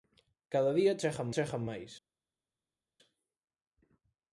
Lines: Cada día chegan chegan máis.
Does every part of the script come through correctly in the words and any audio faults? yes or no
yes